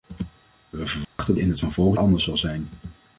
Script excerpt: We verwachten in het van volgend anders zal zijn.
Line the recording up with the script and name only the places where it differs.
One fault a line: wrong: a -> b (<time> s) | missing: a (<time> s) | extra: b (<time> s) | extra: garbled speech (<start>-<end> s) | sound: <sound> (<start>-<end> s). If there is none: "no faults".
sound: dropout (1.0-1.2 s)